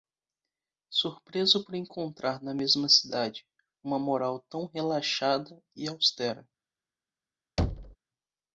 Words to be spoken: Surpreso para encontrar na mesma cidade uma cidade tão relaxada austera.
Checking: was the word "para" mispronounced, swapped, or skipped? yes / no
yes